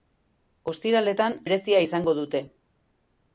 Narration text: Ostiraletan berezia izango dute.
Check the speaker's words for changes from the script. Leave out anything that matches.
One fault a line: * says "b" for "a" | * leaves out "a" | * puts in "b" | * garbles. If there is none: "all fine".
all fine